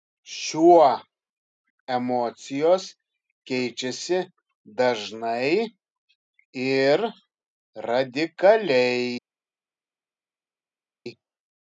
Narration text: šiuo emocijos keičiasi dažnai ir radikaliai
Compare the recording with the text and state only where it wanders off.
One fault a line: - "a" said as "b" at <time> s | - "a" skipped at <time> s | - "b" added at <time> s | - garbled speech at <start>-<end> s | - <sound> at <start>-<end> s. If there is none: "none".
none